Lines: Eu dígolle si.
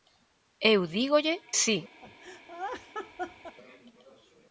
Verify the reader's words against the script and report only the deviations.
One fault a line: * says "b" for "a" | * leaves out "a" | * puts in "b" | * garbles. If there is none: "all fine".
all fine